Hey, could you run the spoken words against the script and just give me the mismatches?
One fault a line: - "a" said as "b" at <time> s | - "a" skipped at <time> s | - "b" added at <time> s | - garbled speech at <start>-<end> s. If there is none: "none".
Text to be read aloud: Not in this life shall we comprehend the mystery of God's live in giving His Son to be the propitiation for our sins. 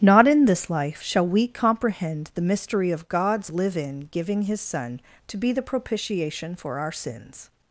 none